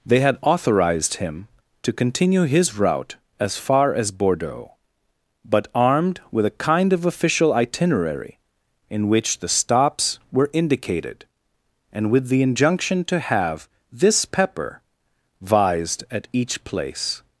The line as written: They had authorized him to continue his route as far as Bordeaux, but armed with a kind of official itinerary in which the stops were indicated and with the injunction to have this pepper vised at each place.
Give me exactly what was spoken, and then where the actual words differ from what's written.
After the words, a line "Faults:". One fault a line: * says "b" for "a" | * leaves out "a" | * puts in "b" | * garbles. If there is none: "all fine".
They had authorized him to continue his route as far as Bordeaux, but armed with a kind of official itinerary in which the stops were indicated and with the injunction to have this pepper vised at each place.
Faults:
all fine